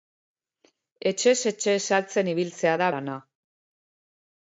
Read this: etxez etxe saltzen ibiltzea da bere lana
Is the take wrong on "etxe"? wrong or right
right